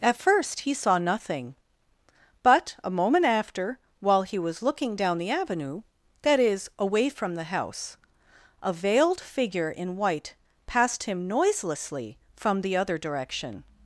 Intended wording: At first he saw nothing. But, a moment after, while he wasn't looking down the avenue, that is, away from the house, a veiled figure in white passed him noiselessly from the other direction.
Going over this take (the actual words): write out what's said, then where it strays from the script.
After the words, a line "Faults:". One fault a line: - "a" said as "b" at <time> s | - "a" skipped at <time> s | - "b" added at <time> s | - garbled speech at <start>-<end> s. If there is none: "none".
At first he saw nothing. But, a moment after, while he was looking down the avenue, that is, away from the house, a veiled figure in white passed him noiselessly from the other direction.
Faults:
- "wasn't" said as "was" at 4.4 s